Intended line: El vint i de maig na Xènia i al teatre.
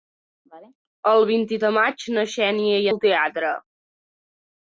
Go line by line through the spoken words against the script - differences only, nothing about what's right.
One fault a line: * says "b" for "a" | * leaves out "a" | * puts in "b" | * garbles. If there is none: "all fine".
all fine